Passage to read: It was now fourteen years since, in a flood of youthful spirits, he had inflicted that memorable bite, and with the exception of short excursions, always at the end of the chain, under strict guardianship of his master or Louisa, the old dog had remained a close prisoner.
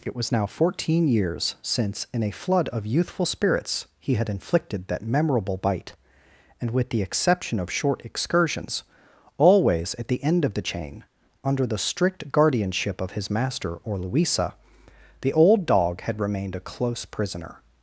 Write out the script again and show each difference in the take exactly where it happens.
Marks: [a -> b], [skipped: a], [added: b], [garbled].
It was now fourteen years since, in a flood of youthful spirits, he had inflicted that memorable bite, and with the exception of short excursions, always at the end of the chain, under [added: the] strict guardianship of his master or Louisa, the old dog had remained a close prisoner.